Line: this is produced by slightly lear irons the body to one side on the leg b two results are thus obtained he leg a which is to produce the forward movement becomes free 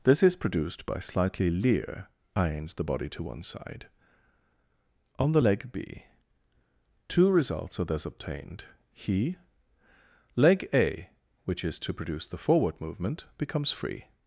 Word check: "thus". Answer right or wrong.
right